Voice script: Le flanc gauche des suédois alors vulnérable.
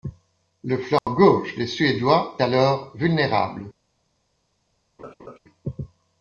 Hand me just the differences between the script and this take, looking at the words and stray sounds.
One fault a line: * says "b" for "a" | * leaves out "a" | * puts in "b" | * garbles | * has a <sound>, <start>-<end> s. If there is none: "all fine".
* has a dropout, 1.0-1.1 s
* has a laugh, 5.0-5.4 s